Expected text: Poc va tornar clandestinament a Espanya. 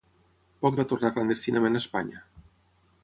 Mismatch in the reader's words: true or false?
false